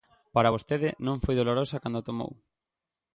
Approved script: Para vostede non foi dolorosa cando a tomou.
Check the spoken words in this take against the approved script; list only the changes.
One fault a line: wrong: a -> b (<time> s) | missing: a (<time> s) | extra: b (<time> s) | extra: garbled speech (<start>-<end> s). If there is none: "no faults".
no faults